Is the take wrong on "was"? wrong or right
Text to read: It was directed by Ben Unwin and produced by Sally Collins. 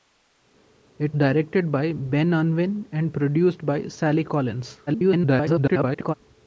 wrong